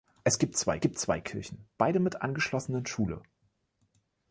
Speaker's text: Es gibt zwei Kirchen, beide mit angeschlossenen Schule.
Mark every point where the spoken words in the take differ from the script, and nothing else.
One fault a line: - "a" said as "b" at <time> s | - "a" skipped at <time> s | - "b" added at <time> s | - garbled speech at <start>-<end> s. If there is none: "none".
- "gibt zwei" added at 0.8 s